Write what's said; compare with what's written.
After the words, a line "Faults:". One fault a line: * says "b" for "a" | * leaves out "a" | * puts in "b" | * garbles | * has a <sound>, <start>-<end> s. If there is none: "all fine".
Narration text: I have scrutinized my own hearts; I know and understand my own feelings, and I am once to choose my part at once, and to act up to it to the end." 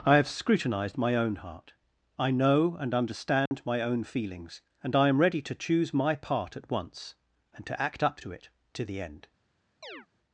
I have scrutinized my own heart; I know and understand my own feelings, and I am ready to choose my part at once, and to act up to it to the end."
Faults:
* says "heart" for "hearts"
* has a dropout, 3.5-3.5 s
* says "ready" for "once"
* has a chirp, 9.8-10.1 s